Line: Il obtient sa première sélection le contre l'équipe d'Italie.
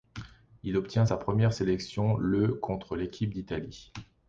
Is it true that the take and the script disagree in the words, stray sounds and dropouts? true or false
false